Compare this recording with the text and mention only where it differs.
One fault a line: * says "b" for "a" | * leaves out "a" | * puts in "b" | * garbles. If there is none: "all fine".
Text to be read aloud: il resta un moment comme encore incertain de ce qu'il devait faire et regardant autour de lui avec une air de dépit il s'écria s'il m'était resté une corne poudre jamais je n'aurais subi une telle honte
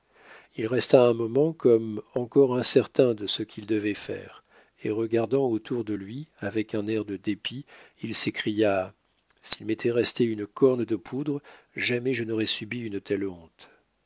* says "un" for "une"
* puts in "de"